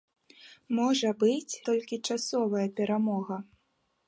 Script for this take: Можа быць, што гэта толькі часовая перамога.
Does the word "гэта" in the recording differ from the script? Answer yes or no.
yes